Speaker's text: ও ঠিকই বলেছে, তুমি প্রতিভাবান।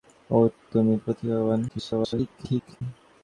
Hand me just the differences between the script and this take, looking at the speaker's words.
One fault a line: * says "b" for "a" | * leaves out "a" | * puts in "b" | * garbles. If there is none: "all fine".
* leaves out "ঠিকই বলেছে"
* garbles